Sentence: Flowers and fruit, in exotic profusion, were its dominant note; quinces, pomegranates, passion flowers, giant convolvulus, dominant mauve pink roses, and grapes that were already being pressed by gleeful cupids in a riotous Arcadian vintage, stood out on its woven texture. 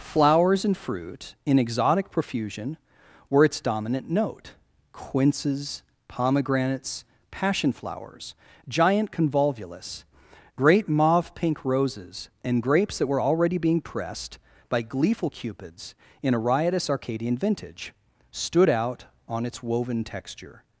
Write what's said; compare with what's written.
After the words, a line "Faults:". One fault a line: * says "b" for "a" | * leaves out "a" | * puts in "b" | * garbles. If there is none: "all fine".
Flowers and fruit, in exotic profusion, were its dominant note; quinces, pomegranates, passion flowers, giant convolvulus, great mauve pink roses, and grapes that were already being pressed by gleeful cupids in a riotous Arcadian vintage, stood out on its woven texture.
Faults:
* says "great" for "dominant"